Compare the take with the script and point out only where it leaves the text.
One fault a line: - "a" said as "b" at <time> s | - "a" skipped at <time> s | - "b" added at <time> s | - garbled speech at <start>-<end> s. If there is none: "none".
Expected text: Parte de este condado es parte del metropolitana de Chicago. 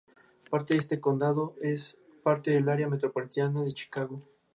- "área" added at 2.7 s